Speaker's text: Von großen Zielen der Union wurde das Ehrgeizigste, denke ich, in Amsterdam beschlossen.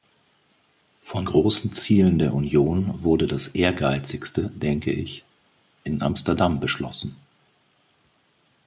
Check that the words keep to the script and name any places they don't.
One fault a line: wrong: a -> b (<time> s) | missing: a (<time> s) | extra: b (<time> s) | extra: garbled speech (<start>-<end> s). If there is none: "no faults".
no faults